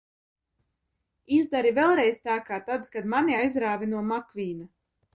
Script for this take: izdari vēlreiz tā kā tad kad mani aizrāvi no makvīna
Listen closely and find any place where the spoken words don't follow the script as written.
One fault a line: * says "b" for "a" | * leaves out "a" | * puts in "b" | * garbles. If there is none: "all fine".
all fine